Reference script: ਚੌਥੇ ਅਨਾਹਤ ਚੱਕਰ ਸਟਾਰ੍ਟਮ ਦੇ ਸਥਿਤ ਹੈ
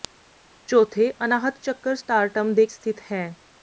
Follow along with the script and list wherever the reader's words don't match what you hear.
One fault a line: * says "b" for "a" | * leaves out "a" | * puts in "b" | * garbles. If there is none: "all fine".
all fine